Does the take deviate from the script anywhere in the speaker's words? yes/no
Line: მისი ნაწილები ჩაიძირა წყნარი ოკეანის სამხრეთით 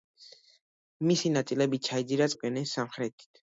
yes